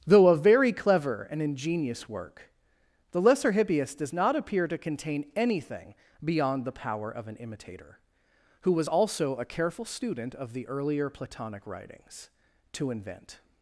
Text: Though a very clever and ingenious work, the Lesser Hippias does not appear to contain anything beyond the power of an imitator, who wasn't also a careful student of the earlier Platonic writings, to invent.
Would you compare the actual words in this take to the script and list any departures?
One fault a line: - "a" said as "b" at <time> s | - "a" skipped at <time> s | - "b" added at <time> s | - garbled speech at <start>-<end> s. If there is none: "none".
- "wasn't" said as "was" at 8.7 s